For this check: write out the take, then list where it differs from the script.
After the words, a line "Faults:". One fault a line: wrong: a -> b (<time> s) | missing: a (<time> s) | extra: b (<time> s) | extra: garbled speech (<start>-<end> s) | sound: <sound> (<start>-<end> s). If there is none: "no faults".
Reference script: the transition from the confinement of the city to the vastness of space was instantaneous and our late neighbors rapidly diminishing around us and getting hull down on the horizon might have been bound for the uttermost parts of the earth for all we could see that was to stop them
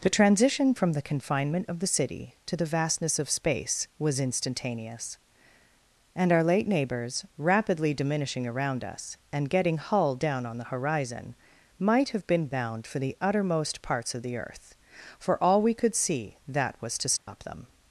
the transition from the confinement of the city to the vastness of space was instantaneous and our late neighbors rapidly diminishing around us and getting hull down on the horizon might have been bound for the uttermost parts of the earth for all we could see that was to stop them
Faults:
sound: dropout (17.2-17.3 s)